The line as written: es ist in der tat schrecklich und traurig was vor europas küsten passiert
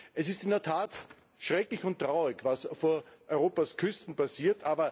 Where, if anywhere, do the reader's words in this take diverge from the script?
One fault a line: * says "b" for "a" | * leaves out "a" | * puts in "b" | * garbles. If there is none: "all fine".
all fine